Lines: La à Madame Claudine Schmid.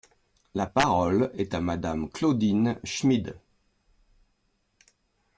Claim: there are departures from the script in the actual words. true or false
true